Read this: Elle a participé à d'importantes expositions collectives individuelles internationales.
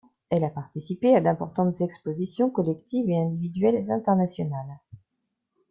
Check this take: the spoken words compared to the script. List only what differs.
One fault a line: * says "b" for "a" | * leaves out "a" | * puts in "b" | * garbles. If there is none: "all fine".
* puts in "et"